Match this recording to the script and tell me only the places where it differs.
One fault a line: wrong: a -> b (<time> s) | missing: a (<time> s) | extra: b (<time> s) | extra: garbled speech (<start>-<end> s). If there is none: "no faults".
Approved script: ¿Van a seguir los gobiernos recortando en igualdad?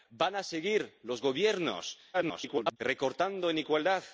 extra: garbled speech (2.1-2.8 s)